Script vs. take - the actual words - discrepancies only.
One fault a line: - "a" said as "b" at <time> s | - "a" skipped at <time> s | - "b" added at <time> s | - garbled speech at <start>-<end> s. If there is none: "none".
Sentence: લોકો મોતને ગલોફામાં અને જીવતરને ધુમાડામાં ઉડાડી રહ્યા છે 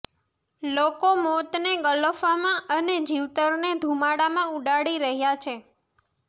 none